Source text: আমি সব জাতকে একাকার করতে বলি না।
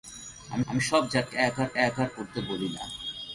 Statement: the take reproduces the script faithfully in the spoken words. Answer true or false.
false